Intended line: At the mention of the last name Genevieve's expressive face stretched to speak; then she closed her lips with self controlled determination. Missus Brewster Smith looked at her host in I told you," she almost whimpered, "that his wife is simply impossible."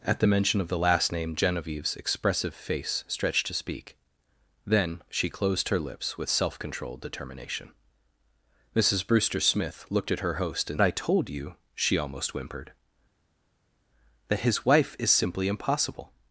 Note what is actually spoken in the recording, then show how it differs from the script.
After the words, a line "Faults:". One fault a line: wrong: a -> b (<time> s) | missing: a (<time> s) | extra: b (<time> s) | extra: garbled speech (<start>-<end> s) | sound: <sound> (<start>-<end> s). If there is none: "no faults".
At the mention of the last name Genevieve's expressive face stretched to speak; then she closed her lips with self controlled determination. Missus Brewster Smith looked at her host in I told you," she almost whimpered, "that his wife is simply impossible."
Faults:
no faults